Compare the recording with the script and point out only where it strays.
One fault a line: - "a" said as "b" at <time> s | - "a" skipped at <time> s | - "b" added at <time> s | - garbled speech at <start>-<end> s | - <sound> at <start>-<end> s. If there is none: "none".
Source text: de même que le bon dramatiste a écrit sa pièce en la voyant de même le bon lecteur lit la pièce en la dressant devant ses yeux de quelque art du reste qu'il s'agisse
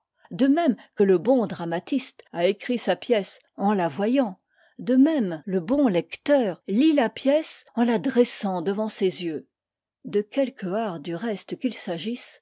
none